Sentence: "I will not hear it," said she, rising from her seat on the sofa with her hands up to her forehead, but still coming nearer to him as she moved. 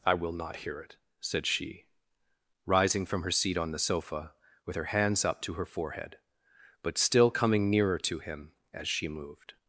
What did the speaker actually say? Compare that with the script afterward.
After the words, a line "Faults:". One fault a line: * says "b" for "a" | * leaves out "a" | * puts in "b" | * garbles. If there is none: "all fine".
"I will not hear it," said she, rising from her seat on the sofa with her hands up to her forehead, but still coming nearer to him as she moved.
Faults:
all fine